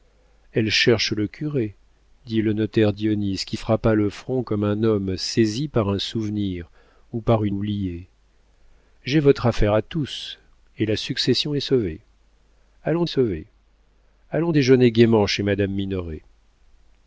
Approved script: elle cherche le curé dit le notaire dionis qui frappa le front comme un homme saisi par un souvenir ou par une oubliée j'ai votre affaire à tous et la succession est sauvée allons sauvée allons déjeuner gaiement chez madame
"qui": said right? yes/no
yes